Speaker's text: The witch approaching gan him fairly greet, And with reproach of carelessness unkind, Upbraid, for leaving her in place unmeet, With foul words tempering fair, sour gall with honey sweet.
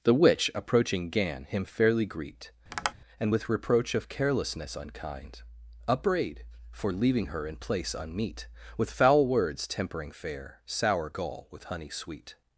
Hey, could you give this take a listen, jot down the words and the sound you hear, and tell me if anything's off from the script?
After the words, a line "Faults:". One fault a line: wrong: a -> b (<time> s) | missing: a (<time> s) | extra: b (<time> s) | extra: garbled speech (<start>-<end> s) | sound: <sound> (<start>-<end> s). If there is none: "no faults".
The witch approaching gan him fairly greet, And with reproach of carelessness unkind, Upbraid, for leaving her in place unmeet, With foul words tempering fair, sour gall with honey sweet.
Faults:
sound: tap (2.7-2.9 s)